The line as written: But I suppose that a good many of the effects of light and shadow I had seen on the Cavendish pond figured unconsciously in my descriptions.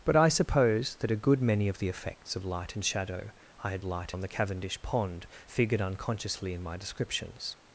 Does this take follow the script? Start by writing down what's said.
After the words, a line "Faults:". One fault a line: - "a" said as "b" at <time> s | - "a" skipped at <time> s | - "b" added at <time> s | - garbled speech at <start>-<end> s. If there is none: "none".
But I suppose that a good many of the effects of light and shadow I had light on the Cavendish pond figured unconsciously in my descriptions.
Faults:
- "seen" said as "light" at 3.8 s